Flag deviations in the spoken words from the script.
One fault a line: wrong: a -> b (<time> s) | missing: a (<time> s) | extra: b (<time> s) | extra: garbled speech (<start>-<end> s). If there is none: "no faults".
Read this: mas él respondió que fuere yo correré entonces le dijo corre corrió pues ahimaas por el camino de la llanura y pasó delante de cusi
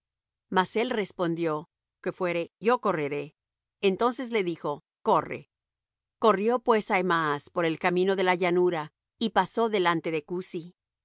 no faults